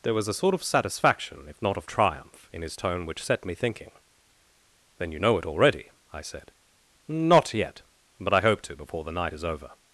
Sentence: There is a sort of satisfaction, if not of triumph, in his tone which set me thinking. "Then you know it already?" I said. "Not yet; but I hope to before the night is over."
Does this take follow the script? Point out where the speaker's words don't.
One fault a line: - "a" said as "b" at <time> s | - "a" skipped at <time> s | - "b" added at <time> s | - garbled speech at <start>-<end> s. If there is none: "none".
- "is" said as "was" at 0.1 s